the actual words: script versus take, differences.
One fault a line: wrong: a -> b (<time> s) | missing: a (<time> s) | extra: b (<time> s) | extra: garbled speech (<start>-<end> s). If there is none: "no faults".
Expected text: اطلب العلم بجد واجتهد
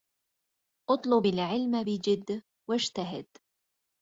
no faults